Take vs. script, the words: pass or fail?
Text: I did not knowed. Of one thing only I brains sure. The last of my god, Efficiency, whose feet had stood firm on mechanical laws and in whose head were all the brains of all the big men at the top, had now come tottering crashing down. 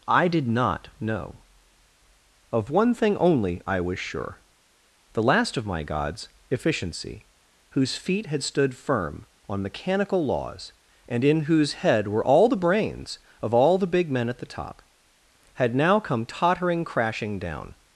fail